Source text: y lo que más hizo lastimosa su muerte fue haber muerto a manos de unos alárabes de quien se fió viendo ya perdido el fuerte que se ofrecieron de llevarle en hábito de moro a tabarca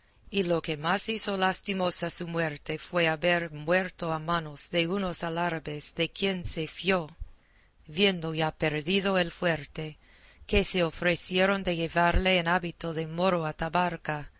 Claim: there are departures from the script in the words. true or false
false